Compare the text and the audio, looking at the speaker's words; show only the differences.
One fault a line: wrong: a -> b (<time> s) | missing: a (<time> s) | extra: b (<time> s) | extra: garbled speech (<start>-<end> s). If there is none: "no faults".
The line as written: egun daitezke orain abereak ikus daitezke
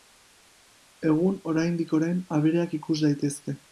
wrong: daitezke -> oraindik (1.5 s)